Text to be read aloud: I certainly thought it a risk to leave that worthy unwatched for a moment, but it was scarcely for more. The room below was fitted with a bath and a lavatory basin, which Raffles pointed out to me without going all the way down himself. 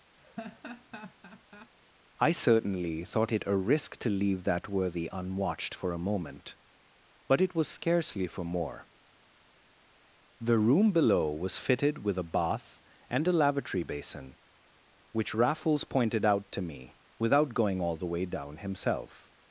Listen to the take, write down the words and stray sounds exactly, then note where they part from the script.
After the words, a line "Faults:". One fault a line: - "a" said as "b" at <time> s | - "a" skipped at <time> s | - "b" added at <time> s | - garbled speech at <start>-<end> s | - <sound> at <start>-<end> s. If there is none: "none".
I certainly thought it a risk to leave that worthy unwatched for a moment, but it was scarcely for more. The room below was fitted with a bath and a lavatory basin, which Raffles pointed out to me without going all the way down himself.
Faults:
- laugh at 0.2-1.7 s